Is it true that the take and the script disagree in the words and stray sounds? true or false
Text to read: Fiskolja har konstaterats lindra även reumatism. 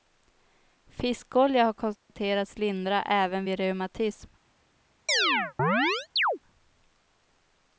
true